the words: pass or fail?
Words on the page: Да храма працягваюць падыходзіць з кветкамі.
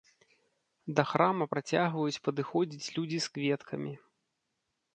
fail